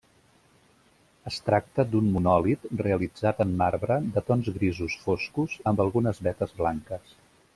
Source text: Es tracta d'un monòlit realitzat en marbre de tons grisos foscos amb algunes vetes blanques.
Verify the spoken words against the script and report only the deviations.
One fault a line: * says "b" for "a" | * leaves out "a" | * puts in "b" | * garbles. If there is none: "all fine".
all fine